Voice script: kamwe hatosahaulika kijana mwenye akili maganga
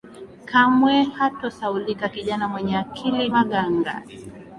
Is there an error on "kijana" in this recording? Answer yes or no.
no